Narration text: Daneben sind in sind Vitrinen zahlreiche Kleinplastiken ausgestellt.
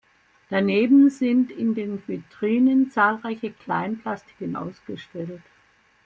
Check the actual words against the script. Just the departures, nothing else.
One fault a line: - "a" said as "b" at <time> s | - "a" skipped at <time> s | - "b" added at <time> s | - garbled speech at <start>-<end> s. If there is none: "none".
- "sind" said as "den" at 1.8 s